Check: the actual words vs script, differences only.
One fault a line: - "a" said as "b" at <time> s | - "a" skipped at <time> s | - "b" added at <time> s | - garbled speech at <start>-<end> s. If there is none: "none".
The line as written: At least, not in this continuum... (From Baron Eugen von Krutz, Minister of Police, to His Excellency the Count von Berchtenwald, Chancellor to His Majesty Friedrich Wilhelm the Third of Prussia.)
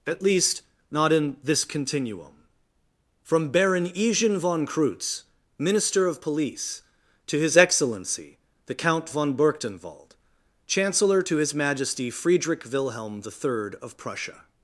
none